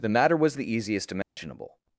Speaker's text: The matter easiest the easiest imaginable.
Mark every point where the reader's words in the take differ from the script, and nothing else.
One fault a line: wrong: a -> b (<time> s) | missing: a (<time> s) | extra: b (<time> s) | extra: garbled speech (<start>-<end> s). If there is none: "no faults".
wrong: easiest -> was (0.3 s)